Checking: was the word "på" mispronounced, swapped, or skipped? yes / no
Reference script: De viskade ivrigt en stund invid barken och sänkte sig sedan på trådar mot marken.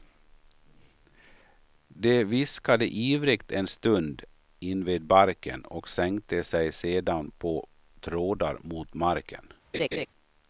no